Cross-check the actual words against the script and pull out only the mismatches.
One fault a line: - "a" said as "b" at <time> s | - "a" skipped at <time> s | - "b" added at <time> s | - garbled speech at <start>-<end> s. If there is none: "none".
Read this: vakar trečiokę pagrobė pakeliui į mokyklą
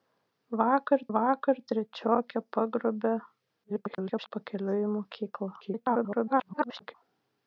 - "vakar" added at 1.2 s
- garbled speech at 3.6-4.3 s
- garbled speech at 5.6-6.9 s